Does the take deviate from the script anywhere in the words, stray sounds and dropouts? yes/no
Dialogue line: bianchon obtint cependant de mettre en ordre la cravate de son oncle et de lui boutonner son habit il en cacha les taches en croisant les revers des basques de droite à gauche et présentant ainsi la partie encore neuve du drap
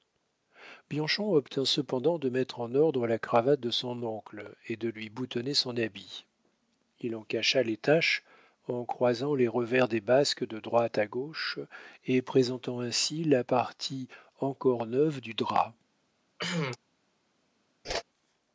yes